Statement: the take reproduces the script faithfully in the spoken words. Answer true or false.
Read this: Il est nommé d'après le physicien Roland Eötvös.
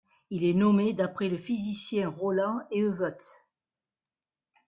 true